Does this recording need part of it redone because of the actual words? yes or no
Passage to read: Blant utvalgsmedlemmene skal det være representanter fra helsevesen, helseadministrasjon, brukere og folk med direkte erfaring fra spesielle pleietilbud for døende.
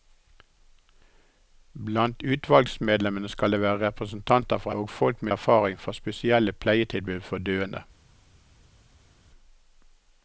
yes